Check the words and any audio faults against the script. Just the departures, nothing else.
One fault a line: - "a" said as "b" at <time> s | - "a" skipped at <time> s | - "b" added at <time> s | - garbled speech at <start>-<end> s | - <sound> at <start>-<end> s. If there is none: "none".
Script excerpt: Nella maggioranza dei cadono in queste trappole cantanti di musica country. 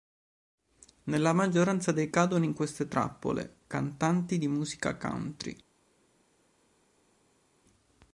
none